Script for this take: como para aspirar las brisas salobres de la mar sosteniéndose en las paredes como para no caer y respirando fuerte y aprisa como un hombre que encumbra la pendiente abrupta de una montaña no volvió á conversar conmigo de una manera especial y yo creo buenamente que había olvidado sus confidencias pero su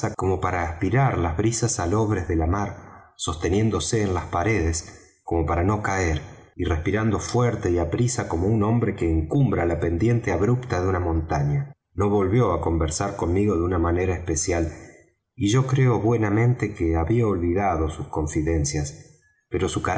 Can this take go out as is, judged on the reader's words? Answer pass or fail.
pass